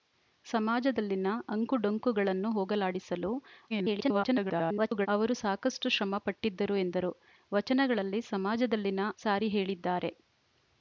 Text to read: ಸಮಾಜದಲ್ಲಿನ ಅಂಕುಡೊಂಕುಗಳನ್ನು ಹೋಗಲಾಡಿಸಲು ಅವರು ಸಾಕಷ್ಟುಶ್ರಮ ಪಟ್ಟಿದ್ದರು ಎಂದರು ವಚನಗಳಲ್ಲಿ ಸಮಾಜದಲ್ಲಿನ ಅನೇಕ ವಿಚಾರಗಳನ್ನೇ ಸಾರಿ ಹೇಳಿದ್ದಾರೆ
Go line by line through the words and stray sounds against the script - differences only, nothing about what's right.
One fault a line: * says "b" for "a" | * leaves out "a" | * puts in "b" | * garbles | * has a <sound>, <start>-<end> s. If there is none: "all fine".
* garbles
* leaves out "ಅನೇಕ ವಿಚಾರಗಳನ್ನೇ"